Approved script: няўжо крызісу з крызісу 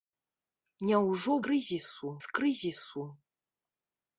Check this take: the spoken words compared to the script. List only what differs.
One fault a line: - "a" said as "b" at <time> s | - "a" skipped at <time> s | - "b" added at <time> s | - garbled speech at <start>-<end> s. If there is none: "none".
none